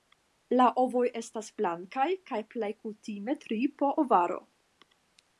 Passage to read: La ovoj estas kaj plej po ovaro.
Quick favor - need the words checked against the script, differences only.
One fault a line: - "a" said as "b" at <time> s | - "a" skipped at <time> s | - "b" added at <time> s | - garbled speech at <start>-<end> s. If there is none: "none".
- "blankaj" added at 1.6 s
- "kutime tri" added at 2.8 s